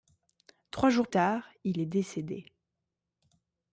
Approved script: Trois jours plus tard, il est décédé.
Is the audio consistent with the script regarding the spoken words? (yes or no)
no